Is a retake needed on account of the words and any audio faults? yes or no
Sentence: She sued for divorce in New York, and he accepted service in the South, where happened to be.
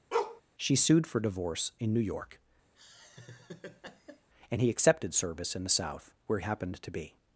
yes